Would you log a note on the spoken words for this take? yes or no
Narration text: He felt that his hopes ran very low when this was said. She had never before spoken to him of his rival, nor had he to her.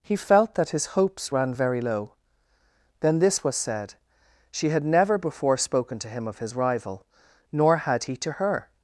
yes